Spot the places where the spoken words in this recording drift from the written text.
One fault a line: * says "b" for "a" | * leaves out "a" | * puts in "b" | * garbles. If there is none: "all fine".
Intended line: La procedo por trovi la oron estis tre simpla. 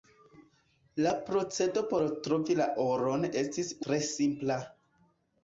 all fine